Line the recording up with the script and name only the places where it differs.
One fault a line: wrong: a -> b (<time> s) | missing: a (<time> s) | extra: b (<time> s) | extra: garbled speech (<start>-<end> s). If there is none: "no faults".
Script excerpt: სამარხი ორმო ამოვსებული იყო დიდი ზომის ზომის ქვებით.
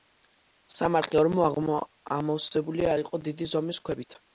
extra: არ (2.9 s)
missing: ზომის (3.9 s)